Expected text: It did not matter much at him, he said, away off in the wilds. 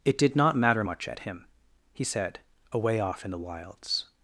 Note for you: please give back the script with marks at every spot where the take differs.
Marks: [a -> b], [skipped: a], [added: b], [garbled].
It did not matter much at him, he said, away off in the wilds.